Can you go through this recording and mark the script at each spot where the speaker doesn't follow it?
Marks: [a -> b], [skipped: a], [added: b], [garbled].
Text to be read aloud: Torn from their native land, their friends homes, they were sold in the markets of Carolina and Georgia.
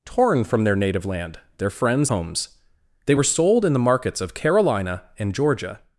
Torn from their native land, their friends homes, they were sold in the markets of Carolina and Georgia.